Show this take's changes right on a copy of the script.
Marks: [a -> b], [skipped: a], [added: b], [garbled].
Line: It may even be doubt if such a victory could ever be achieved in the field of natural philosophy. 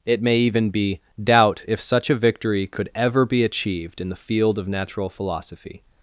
It may even be doubt if such a victory could ever be achieved in the field of natural philosophy.